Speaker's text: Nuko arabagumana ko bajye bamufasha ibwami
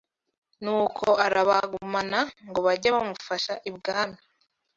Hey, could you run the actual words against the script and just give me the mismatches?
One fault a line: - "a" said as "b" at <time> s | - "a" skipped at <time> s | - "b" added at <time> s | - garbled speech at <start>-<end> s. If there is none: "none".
- "ko" said as "ngo" at 2.5 s